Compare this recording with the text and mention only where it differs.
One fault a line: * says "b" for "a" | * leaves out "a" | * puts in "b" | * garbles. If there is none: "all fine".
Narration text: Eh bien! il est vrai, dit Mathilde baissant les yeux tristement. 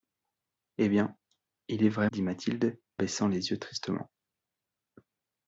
all fine